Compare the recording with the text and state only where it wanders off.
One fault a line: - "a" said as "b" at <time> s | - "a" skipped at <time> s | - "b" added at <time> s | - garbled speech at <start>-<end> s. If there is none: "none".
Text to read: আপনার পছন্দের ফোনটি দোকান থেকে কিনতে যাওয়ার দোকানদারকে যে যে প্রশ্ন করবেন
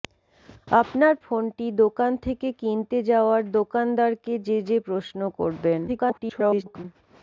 - "পছন্দের" skipped at 1.1 s
- garbled speech at 5.9-6.8 s